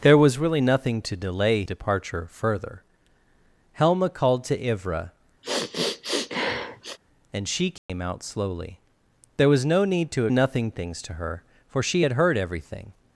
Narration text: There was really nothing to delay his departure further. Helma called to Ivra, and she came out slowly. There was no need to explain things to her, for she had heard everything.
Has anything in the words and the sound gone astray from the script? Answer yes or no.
yes